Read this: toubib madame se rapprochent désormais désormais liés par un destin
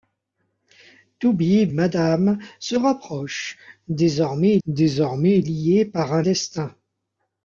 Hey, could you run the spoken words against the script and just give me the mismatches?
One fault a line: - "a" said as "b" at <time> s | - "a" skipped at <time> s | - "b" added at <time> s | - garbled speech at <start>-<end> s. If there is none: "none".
none